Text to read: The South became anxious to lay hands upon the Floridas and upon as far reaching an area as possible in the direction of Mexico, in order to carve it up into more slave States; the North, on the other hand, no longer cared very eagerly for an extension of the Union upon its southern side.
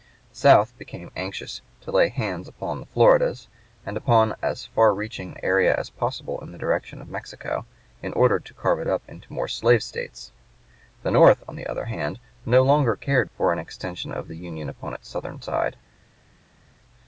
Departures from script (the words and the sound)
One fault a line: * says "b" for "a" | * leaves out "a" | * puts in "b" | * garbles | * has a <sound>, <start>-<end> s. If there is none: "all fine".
* leaves out "an"
* leaves out "very eagerly"